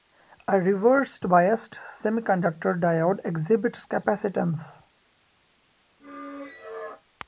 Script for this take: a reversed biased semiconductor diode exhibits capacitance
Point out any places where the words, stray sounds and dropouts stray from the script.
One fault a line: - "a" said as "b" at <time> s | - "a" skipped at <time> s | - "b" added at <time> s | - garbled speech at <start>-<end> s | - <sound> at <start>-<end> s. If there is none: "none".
- squeak at 6.0-7.0 s